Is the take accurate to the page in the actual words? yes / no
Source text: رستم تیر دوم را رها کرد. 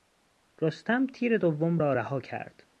yes